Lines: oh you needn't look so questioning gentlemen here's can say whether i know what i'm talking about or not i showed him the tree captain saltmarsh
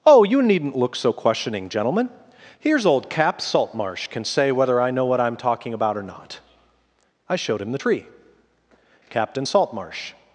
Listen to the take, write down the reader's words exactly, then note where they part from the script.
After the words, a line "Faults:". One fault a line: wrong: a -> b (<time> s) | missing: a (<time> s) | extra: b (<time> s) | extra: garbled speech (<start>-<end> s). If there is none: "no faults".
oh you needn't look so questioning gentlemen here's old cap saltmarsh can say whether i know what i'm talking about or not i showed him the tree captain saltmarsh
Faults:
extra: old cap saltmarsh (2.9 s)